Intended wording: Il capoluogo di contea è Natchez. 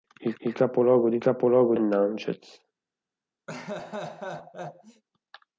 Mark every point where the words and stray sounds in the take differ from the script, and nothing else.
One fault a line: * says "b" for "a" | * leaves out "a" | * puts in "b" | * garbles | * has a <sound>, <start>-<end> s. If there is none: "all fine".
* puts in "il"
* says "capoluogo" for "contea"
* has a laugh, 3.5-5.0 s